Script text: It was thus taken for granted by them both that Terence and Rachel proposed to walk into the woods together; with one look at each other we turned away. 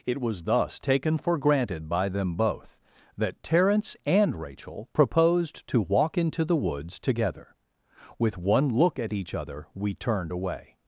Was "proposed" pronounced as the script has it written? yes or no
yes